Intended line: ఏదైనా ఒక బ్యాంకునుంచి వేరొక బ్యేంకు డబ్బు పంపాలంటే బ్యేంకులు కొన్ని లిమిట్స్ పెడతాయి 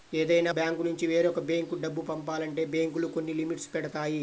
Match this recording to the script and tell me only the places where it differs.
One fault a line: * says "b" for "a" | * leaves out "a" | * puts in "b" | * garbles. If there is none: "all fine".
* leaves out "ఒక"